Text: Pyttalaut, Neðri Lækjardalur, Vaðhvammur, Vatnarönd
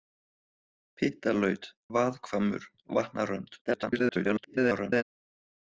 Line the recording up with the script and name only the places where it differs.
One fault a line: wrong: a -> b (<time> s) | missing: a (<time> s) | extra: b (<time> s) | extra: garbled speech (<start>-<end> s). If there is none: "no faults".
missing: Neðri Lækjardalur (1.7 s)
extra: garbled speech (3.7-5.0 s)